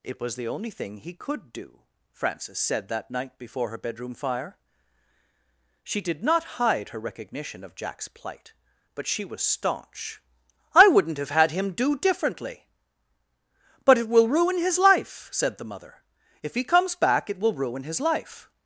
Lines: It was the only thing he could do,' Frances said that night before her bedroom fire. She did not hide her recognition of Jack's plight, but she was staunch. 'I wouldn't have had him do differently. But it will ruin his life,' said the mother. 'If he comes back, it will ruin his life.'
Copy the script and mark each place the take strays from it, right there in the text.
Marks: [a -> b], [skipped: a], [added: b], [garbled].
It was the only thing he could do,' Frances said that night before her bedroom fire. She did not hide her recognition of Jack's plight, but she was staunch. 'I wouldn't have had him do differently. But it will ruin his life,' said the mother. 'If he comes back, it will ruin his life.'